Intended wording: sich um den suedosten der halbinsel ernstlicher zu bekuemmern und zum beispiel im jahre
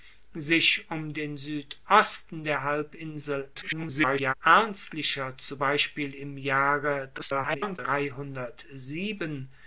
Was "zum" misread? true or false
true